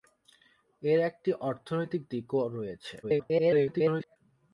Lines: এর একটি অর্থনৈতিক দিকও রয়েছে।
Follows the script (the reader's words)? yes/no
no